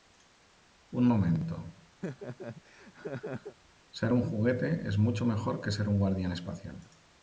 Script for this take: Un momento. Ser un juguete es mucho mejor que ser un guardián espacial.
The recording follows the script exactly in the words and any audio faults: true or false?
false